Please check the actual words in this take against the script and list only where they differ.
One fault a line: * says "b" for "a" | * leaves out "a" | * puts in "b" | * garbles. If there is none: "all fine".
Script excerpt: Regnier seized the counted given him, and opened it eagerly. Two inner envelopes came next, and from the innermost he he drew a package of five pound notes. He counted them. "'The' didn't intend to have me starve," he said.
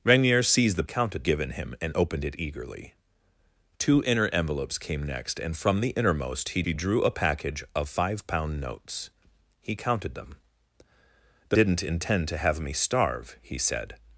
all fine